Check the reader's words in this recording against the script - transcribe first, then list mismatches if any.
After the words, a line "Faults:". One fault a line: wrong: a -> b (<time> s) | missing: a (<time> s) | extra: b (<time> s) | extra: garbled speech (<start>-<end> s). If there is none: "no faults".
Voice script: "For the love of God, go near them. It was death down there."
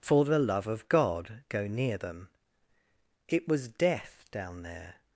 "For the love of God, go near them. It was death down there."
Faults:
no faults